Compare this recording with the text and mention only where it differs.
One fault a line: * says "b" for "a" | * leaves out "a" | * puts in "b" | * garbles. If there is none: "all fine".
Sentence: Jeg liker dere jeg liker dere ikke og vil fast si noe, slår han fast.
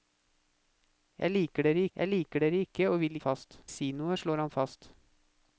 all fine